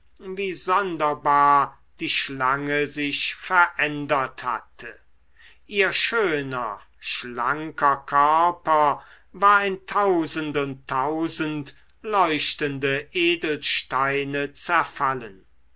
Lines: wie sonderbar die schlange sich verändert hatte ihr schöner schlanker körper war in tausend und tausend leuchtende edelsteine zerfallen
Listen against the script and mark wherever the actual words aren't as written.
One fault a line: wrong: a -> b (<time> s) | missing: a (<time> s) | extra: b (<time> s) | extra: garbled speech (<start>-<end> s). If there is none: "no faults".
no faults